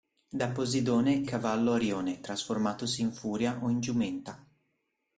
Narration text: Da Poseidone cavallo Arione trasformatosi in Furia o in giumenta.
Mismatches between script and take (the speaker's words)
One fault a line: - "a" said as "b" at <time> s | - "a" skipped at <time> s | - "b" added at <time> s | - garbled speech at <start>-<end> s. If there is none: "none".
none